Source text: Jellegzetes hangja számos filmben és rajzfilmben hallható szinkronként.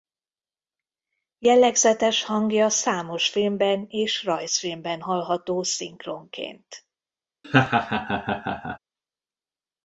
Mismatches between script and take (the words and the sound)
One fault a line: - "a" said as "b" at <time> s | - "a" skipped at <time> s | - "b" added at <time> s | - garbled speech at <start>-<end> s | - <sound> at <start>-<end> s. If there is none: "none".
- laugh at 7.4-8.8 s